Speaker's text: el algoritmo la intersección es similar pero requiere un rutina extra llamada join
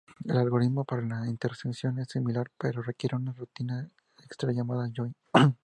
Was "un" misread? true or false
true